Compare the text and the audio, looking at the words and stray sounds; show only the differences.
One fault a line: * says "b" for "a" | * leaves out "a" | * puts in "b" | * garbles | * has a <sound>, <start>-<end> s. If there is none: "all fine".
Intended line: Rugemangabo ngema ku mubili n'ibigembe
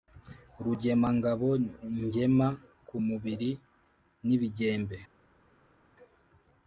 all fine